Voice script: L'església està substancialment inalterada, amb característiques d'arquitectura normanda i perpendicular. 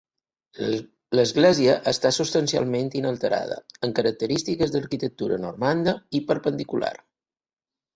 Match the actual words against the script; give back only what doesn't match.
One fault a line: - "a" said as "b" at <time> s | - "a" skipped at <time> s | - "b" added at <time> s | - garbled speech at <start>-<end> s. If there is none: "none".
none